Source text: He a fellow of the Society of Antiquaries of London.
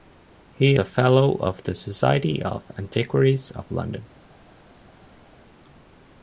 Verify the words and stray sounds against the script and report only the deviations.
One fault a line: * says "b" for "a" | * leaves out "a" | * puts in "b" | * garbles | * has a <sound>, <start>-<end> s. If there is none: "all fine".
all fine